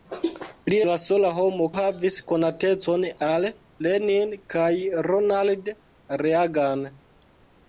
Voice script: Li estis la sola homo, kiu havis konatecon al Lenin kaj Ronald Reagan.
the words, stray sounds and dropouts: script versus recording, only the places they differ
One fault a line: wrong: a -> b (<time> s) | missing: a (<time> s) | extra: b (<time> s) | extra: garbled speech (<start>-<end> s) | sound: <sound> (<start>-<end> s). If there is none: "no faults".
missing: estis (0.8 s)
missing: kiu (1.7 s)